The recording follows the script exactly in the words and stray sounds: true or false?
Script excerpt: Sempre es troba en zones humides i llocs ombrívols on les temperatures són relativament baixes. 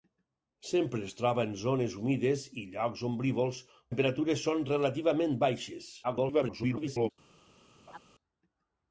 false